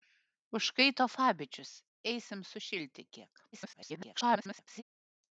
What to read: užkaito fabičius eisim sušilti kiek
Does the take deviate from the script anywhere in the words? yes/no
yes